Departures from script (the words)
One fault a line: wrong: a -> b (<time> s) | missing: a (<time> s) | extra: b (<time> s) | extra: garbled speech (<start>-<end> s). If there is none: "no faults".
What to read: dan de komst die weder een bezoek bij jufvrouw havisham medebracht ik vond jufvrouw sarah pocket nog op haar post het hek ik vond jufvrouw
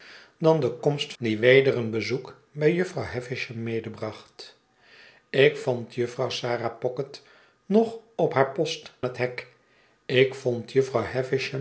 no faults